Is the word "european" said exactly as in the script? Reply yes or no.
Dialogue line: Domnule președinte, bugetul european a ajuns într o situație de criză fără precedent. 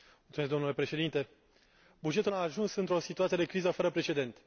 no